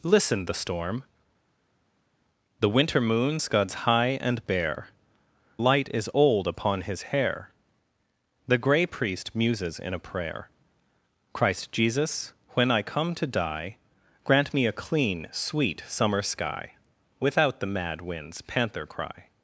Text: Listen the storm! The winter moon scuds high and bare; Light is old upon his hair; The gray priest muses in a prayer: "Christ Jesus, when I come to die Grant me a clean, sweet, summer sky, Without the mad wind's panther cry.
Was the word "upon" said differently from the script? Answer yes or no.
no